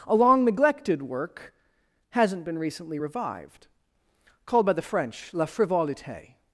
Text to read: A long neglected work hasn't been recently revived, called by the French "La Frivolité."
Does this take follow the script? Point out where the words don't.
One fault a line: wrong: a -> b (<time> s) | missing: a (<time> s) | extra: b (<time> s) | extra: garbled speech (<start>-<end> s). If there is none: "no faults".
no faults